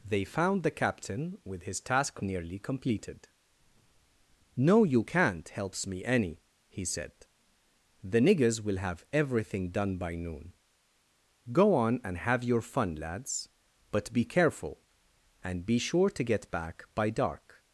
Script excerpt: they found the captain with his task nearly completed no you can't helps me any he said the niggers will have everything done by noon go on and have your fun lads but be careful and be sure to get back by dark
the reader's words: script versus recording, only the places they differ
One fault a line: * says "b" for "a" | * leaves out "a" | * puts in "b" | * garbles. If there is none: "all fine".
all fine